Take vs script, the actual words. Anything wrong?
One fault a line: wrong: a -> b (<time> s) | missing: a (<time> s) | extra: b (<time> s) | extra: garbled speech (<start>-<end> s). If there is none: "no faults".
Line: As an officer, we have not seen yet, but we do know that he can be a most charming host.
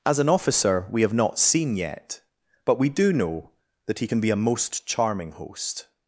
no faults